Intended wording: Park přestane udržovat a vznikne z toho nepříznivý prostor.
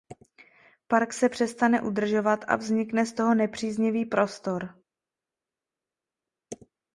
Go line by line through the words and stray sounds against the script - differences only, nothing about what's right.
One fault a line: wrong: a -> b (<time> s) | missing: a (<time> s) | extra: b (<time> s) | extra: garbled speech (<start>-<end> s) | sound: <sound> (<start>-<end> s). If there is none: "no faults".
extra: se (1.1 s)